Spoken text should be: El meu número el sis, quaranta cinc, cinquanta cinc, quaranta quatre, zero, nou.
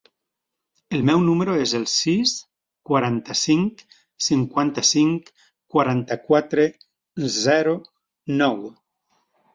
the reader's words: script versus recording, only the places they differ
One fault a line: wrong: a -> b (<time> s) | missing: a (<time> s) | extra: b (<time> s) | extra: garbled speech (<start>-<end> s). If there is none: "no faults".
extra: es (1.6 s)